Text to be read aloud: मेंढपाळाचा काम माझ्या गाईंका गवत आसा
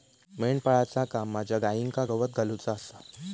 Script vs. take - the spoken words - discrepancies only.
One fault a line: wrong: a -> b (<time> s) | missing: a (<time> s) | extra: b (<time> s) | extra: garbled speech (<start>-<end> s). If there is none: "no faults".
extra: घालुचा (2.4 s)